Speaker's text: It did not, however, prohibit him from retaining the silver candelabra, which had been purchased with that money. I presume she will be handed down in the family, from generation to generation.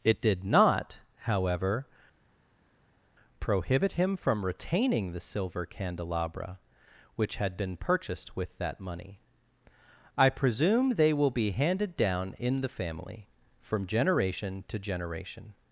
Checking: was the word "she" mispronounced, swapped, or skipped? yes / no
yes